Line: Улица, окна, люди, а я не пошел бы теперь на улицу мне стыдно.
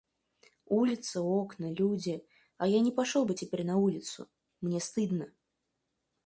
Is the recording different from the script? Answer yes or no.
no